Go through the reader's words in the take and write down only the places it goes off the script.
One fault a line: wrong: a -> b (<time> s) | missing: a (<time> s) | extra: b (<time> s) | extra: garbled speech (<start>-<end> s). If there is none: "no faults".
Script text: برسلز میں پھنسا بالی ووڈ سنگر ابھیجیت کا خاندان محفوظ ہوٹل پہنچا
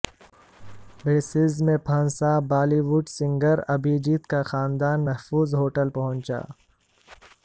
no faults